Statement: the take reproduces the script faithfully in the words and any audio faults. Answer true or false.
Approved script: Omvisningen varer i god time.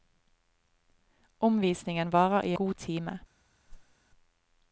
false